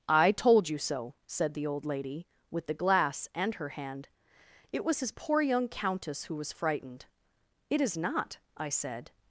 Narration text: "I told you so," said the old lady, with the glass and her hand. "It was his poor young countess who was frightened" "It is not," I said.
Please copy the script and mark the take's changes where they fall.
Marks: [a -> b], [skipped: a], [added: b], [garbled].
"I told you so," said the old lady, with the glass and her hand. "It was his poor young countess who was frightened" "It is not," I said.